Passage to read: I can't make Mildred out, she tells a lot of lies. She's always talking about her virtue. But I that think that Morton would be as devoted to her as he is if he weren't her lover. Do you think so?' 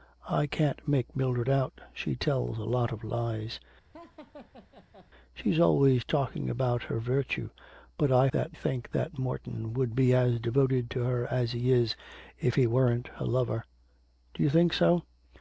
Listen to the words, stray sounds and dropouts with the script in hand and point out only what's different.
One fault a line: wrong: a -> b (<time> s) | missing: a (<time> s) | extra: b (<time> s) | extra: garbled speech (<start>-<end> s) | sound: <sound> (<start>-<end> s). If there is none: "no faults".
sound: laugh (3.9-5.1 s)